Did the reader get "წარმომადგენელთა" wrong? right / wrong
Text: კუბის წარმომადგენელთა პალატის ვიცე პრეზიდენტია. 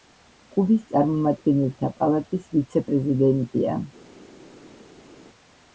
right